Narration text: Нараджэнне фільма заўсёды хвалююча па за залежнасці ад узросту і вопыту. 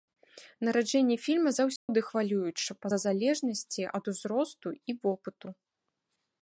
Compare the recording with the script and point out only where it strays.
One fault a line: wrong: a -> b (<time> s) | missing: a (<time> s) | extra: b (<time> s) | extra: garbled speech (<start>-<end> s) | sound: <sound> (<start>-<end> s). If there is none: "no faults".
sound: dropout (1.8-1.9 s)